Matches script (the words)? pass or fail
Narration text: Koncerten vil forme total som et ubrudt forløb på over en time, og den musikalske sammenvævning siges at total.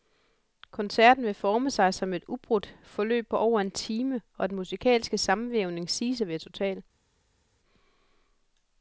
fail